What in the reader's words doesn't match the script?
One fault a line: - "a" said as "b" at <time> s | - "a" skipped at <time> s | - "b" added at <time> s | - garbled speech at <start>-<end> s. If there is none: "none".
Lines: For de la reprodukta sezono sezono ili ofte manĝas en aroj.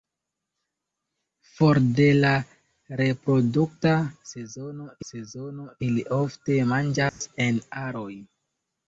none